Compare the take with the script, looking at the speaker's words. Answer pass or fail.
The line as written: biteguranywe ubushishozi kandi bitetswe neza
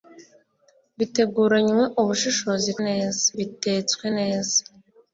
fail